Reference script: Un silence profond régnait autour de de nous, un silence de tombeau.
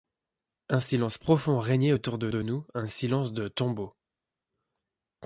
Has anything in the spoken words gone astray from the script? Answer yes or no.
no